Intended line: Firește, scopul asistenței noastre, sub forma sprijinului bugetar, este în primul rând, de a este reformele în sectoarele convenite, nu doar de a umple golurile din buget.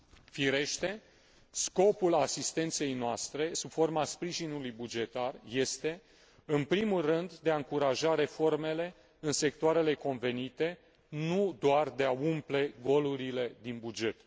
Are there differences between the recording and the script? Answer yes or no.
yes